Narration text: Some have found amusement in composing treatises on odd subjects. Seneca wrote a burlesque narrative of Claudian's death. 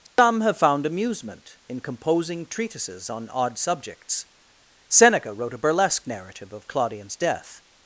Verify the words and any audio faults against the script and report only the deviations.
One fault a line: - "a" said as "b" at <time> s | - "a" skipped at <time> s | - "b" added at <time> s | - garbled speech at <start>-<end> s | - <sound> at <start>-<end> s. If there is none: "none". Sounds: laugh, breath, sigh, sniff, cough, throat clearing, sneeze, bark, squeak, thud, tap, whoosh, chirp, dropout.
- dropout at 0.1-0.2 s